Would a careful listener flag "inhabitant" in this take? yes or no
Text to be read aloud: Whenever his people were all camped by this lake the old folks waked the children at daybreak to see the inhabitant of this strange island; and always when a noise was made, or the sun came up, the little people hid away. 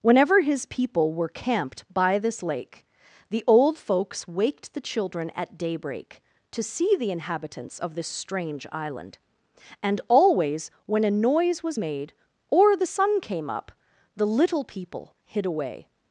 yes